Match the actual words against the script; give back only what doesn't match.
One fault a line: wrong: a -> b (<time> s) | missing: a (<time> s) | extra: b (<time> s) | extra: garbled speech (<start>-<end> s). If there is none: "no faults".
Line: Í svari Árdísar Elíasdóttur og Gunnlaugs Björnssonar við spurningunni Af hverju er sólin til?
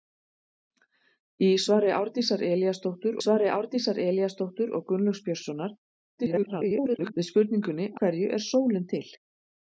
extra: svari Árdísar Elíasdóttur (3.2 s)
extra: garbled speech (6.2-7.1 s)
missing: Af (7.9 s)